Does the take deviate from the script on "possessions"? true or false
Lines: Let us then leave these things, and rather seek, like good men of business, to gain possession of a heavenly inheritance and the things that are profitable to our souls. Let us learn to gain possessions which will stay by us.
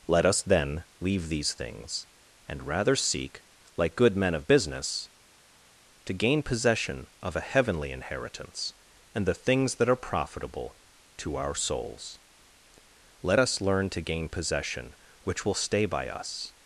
true